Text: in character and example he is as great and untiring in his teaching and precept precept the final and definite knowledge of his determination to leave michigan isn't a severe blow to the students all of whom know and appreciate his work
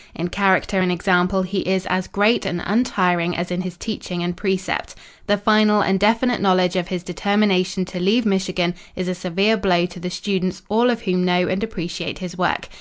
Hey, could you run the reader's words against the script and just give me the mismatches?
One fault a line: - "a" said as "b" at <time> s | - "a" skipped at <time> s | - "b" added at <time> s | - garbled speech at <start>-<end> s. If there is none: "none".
- "as" added at 3.4 s
- "precept" skipped at 5.0 s
- "isn't" said as "is" at 9.0 s